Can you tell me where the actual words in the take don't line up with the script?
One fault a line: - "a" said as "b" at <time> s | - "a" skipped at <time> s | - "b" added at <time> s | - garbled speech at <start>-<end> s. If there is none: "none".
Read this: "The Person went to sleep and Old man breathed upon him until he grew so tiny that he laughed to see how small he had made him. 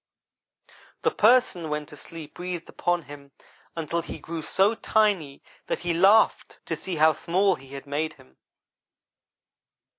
- "and Old man" skipped at 2.4 s